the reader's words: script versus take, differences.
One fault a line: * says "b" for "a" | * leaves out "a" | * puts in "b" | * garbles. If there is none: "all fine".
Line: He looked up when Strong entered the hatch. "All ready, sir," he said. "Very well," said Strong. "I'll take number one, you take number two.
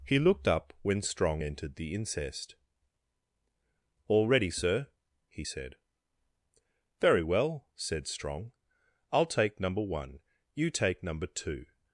* says "incest" for "hatch"